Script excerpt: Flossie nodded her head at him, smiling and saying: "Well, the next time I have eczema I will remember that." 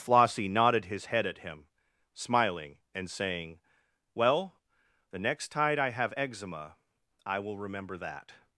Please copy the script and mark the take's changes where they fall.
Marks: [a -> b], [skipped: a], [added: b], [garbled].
Flossie nodded [her -> his] head at him, smiling and saying: "Well, the next [time -> tide] I have eczema I will remember that."